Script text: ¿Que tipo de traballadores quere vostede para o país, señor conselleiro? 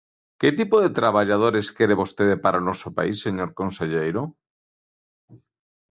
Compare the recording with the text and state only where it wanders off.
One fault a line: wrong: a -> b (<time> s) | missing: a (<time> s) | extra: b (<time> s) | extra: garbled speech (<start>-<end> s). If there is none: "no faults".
extra: noso (2.7 s)